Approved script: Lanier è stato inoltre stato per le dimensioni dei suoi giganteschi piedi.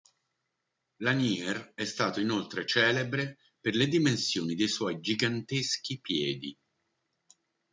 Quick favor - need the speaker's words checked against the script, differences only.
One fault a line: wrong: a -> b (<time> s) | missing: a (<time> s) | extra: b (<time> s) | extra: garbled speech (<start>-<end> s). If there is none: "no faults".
wrong: stato -> celebre (2.6 s)